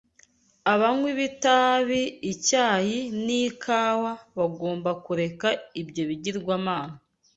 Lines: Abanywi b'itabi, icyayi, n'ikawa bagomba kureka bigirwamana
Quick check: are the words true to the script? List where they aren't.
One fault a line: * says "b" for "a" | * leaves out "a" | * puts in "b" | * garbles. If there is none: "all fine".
* puts in "ibyo"